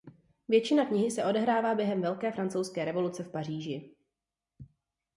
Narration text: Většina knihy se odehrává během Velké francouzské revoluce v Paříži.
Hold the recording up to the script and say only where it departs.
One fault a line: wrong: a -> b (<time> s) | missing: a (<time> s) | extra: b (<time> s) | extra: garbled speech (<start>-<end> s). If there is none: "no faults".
no faults